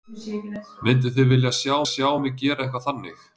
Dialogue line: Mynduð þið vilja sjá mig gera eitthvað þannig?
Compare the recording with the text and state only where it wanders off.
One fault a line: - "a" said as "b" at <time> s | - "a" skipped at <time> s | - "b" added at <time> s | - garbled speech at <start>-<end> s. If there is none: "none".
- "sjá" added at 1.9 s